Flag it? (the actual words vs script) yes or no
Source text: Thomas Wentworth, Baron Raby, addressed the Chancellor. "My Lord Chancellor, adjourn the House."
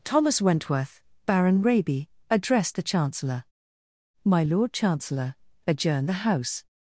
no